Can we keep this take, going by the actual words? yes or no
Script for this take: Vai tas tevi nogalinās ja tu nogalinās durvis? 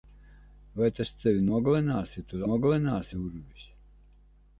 yes